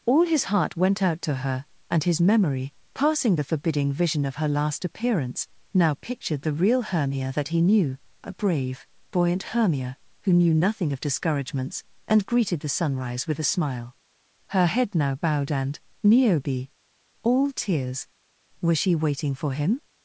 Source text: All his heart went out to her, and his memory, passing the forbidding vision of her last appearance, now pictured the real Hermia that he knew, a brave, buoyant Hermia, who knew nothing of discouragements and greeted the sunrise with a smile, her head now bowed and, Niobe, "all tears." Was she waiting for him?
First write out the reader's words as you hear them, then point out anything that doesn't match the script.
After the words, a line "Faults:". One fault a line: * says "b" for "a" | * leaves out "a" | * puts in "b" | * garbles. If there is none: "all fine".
All his heart went out to her, and his memory, passing the forbidding vision of her last appearance, now pictured the real Hermia that he knew, a brave, buoyant Hermia, who knew nothing of discouragements and greeted the sunrise with a smile, her head now bowed and, Niobe, "all tears." Was she waiting for him?
Faults:
all fine